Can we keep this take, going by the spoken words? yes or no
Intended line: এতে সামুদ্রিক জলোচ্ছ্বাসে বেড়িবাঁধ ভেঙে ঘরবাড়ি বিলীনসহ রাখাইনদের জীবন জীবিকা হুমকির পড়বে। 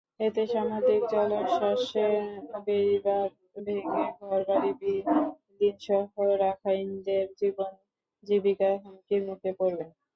no